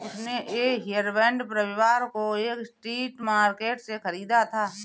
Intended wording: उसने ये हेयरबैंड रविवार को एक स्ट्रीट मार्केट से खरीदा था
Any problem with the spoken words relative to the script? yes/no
no